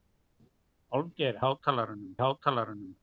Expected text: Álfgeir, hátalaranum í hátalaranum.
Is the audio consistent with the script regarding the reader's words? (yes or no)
yes